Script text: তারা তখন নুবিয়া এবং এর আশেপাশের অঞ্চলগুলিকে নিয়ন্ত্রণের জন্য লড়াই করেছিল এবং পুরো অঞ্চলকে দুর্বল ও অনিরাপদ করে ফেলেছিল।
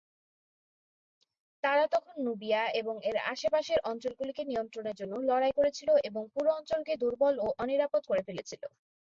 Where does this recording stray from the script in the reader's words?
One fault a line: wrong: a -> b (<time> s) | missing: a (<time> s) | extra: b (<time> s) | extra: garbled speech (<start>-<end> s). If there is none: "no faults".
no faults